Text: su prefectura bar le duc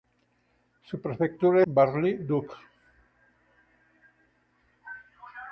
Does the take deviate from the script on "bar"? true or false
false